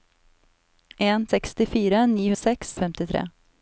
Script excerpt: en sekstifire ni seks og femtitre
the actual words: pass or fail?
pass